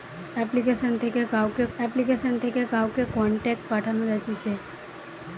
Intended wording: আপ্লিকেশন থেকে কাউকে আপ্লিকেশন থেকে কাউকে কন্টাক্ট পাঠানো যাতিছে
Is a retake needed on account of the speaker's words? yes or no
no